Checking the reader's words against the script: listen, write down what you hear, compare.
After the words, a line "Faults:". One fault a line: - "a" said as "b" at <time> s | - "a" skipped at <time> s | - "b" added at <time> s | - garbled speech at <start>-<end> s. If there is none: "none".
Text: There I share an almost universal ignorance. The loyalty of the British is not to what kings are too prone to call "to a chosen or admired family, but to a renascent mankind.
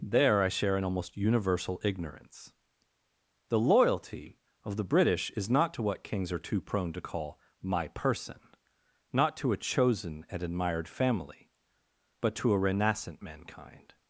There I share an almost universal ignorance. The loyalty of the British is not to what kings are too prone to call "my person," not to a chosen and admired family, but to a renascent mankind.
Faults:
- "my person not" added at 7.6 s
- "or" said as "and" at 10.3 s